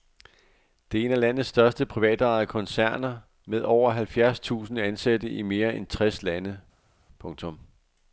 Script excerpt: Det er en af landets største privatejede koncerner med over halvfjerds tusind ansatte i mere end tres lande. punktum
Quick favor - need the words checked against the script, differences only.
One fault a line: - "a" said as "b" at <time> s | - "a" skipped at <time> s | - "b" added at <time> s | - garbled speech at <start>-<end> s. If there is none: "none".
none